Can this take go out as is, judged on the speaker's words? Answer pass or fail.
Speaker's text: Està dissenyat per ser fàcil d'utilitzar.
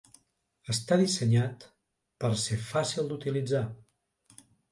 pass